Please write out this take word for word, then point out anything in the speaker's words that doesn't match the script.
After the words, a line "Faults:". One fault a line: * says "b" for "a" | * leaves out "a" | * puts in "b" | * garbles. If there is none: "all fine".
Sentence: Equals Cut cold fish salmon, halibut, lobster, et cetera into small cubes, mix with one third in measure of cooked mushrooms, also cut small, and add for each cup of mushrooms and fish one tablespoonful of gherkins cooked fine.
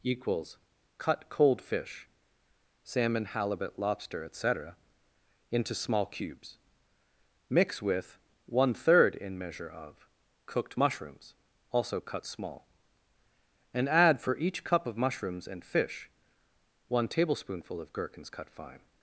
Equals Cut cold fish salmon, halibut, lobster, et cetera into small cubes, mix with one third in measure of cooked mushrooms, also cut small, and add for each cup of mushrooms and fish one tablespoonful of gherkins cut fine.
Faults:
* says "cut" for "cooked"